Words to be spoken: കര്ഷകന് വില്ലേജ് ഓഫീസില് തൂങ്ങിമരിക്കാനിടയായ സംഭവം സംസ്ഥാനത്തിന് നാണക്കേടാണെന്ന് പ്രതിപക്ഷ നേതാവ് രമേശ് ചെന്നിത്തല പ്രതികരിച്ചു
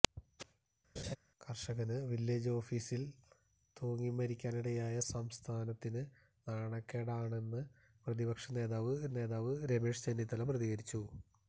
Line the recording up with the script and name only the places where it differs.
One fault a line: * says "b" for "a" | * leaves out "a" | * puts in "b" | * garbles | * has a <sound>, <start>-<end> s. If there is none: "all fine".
* has a laugh, 1.0-1.2 s
* leaves out "സംഭവം"
* puts in "നേതാവ്"